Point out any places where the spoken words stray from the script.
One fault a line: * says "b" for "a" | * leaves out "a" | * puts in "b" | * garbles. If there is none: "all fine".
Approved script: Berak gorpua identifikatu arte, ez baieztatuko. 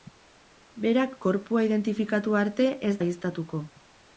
all fine